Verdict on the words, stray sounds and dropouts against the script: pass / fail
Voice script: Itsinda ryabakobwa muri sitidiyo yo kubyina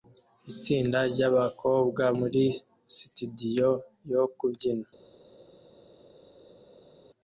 pass